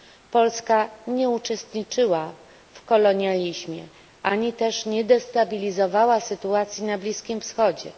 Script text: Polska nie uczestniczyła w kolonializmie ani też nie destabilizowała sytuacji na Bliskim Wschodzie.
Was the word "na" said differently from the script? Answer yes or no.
no